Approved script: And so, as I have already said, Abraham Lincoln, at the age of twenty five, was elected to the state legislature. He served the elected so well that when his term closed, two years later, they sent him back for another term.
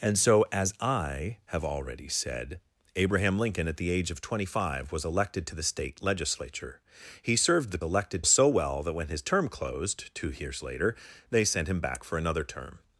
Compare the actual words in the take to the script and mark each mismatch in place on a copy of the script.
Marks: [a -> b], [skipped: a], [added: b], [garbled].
And so, as I have already said, Abraham Lincoln, at the age of twenty five, was elected to the state legislature. He served the elected so well that when his term closed, two years later, they sent him back for another term.